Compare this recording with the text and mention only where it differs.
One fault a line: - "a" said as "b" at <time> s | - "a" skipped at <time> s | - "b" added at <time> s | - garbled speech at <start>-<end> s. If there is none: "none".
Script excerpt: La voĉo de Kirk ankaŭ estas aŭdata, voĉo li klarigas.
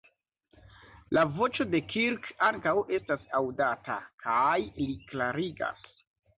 - "voĉo" said as "kaj" at 4.3 s